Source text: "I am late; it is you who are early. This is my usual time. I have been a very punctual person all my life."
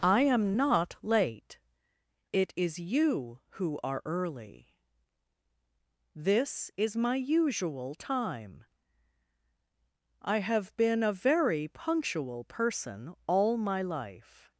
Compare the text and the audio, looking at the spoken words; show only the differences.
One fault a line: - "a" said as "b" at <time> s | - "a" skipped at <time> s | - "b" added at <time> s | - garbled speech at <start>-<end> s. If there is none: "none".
- "not" added at 0.6 s